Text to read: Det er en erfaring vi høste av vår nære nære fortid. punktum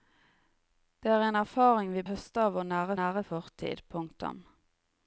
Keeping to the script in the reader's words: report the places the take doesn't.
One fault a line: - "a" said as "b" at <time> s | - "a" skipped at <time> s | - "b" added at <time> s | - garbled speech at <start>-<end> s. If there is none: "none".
none